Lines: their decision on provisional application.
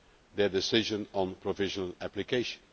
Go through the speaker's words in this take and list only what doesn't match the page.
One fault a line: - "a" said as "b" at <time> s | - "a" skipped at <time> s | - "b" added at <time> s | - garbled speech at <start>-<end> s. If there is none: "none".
none